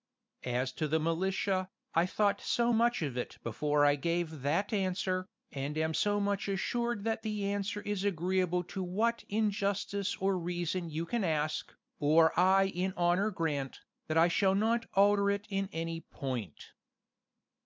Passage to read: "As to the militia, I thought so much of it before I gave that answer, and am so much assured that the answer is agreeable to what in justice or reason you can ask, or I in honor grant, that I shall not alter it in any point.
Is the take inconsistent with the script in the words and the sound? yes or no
no